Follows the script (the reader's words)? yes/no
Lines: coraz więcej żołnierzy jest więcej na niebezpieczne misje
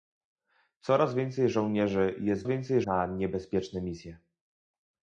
yes